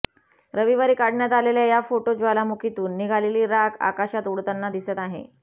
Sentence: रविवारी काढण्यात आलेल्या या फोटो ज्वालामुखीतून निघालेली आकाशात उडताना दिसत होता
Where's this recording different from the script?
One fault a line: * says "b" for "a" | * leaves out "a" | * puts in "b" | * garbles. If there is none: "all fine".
* puts in "राख"
* says "आहे" for "होता"